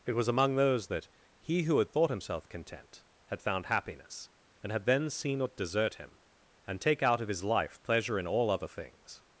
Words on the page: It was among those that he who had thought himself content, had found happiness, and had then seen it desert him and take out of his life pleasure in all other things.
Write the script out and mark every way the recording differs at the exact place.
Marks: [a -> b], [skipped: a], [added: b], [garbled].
It was among those that he who had thought himself content, had found happiness, and had then seen it desert him and take out of his life pleasure in all other things.